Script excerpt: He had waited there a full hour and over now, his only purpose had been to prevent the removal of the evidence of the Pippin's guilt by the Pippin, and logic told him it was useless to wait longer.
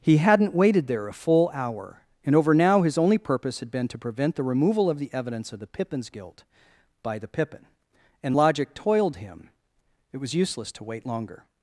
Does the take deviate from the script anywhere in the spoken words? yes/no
yes